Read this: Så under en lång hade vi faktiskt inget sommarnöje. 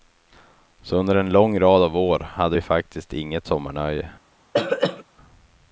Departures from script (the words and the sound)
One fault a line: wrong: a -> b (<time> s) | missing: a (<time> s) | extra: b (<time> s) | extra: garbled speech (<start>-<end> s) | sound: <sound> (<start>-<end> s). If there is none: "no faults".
extra: rad av år (1.6 s)
sound: throat clearing (4.5-5.0 s)